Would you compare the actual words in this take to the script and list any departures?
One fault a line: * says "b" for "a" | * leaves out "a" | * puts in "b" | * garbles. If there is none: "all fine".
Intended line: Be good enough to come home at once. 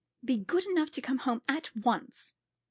all fine